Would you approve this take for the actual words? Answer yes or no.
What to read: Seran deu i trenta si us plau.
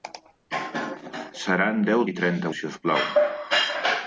yes